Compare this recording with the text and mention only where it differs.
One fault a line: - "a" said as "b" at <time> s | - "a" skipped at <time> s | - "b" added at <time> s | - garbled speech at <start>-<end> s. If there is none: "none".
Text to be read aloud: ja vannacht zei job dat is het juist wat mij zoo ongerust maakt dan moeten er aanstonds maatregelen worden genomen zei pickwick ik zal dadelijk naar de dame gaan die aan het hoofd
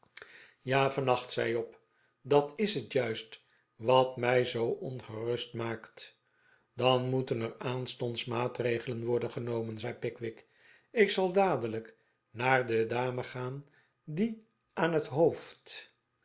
none